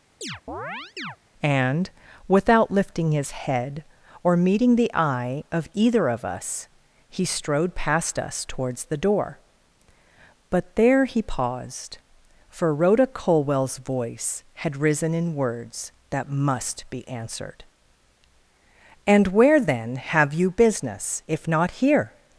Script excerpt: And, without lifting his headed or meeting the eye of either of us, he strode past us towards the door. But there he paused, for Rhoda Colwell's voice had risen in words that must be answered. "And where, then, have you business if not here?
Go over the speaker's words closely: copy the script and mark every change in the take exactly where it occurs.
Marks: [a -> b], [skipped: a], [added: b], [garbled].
And, without lifting his [headed -> head] or meeting the eye of either of us, he strode past us towards the door. But there he paused, for Rhoda Colwell's voice had risen in words that must be answered. "And where, then, have you business if not here?